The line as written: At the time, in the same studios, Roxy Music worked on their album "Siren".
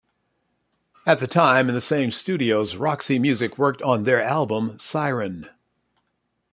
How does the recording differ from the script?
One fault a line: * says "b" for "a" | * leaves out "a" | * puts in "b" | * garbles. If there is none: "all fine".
all fine